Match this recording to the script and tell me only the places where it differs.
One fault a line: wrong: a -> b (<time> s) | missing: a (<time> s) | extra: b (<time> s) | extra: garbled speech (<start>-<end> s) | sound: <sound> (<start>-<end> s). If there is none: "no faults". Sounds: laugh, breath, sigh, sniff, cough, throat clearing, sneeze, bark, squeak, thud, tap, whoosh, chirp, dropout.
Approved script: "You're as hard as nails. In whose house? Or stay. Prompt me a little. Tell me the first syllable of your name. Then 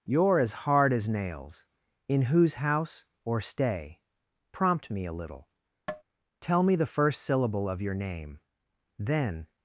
sound: tap (5.9-6.0 s)